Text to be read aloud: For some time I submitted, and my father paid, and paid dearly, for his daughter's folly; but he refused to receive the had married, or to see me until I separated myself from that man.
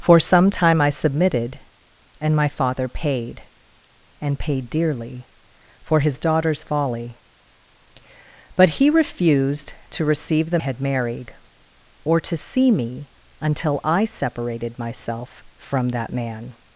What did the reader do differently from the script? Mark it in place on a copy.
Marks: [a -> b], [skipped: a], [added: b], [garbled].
For some time I submitted, and my father paid, and paid dearly, for his daughter's folly; but he refused to receive the had married, or to see me until I separated myself from that man.